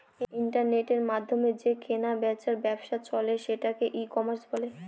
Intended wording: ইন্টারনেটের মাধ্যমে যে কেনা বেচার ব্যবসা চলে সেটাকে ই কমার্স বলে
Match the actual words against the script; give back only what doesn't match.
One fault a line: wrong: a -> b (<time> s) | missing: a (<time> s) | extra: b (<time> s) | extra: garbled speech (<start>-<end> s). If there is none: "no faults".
no faults